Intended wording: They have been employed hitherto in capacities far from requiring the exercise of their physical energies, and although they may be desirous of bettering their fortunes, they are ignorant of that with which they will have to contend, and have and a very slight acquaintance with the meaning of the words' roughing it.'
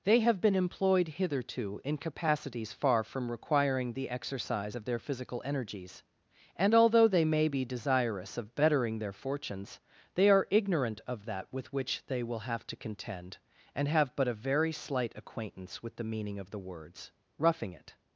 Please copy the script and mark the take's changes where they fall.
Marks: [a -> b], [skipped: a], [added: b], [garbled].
They have been employed hitherto in capacities far from requiring the exercise of their physical energies, and although they may be desirous of bettering their fortunes, they are ignorant of that with which they will have to contend, and have [and -> but] a very slight acquaintance with the meaning of the words' roughing it.'